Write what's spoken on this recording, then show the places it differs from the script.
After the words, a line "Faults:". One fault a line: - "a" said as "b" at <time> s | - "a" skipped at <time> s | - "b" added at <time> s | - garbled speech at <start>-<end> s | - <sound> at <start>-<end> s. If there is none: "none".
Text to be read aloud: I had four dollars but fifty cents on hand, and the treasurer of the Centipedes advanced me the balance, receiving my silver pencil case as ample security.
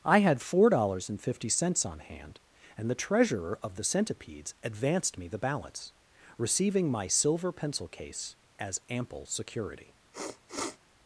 I had four dollars and fifty cents on hand, and the treasurer of the Centipedes advanced me the balance, receiving my silver pencil case as ample security.
Faults:
- "but" said as "and" at 1.1 s
- sniff at 10.1-10.8 s